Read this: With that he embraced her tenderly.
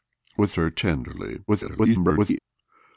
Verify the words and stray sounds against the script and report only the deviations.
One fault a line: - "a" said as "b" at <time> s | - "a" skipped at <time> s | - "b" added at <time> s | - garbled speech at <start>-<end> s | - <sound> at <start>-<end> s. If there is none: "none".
- "that he embraced" skipped at 0.5 s
- garbled speech at 1.5-2.4 s